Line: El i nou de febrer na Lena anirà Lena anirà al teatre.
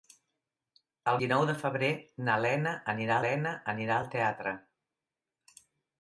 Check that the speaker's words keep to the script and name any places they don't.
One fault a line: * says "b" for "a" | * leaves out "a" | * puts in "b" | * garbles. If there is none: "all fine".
all fine